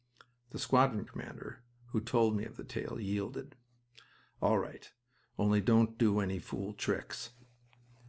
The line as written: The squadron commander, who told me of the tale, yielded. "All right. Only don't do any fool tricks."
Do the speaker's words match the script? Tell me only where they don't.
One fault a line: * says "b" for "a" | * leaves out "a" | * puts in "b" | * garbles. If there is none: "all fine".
all fine